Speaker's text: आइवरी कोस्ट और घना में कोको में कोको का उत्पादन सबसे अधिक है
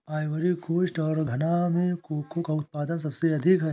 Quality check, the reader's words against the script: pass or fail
fail